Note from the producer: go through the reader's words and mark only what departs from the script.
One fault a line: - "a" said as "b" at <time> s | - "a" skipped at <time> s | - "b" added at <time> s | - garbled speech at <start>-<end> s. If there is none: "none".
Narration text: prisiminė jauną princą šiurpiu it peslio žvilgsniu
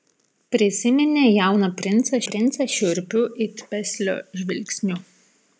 - "princą" added at 2.3 s